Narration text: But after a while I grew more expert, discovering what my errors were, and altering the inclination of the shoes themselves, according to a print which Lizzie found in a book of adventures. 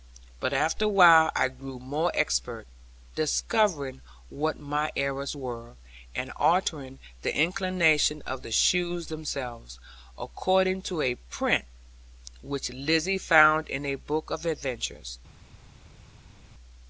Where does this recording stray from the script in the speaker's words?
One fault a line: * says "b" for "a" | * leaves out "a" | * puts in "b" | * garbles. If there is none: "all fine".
all fine